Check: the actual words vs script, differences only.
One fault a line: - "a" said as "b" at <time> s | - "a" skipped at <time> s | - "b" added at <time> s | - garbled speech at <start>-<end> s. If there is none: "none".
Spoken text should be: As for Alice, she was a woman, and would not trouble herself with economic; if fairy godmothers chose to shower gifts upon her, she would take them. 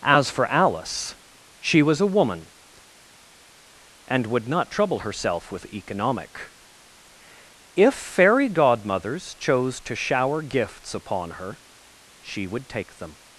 none